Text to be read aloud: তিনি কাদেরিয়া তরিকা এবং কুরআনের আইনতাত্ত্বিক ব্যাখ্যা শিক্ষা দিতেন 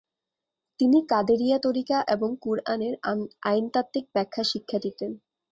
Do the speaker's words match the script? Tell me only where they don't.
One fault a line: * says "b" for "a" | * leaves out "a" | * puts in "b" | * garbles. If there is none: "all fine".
all fine